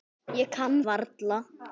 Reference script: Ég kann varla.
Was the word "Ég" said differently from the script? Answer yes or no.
no